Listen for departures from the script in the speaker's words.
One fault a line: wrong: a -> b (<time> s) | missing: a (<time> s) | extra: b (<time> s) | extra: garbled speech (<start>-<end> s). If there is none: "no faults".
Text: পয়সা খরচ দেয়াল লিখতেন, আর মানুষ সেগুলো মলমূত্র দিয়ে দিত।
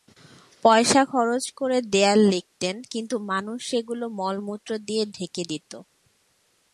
extra: করে (1.5 s)
wrong: আর -> কিন্তু (2.9 s)
extra: ঢেকে (5.2 s)